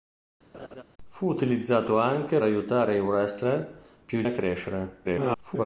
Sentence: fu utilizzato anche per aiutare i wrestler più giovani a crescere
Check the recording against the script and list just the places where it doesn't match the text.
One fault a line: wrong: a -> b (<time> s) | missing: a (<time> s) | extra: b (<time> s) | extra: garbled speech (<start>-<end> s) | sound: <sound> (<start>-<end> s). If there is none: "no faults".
sound: laugh (0.5-0.8 s)
missing: per (2.4 s)
missing: giovani (4.2 s)
extra: garbled speech (5.0-5.7 s)